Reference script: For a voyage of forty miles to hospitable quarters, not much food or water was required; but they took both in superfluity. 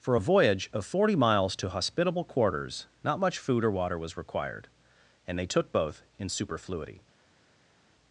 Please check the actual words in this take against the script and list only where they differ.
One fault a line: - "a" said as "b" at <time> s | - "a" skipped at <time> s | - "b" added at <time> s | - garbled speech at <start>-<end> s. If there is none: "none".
- "but" said as "and" at 5.3 s